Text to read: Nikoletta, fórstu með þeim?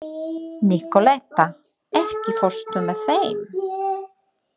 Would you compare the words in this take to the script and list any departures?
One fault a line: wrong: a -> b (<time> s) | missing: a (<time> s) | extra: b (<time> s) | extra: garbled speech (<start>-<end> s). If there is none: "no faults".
extra: ekki (2.0 s)